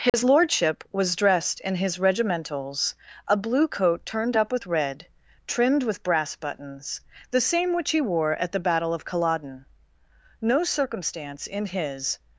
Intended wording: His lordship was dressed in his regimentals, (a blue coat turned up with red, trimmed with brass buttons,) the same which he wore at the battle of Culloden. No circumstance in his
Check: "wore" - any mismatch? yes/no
no